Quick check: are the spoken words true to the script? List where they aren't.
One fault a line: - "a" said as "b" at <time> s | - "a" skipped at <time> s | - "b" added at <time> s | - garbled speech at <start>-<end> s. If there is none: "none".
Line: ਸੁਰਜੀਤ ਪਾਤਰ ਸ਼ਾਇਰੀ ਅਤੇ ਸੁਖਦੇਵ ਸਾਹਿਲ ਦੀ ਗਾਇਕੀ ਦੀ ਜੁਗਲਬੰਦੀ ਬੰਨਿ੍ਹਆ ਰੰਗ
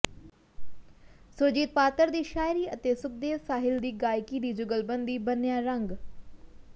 - "ਦੀ" added at 2.1 s